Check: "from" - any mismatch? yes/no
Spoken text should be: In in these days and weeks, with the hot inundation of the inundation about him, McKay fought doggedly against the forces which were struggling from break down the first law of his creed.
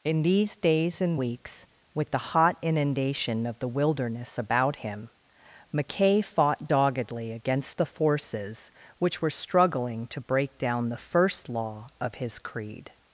yes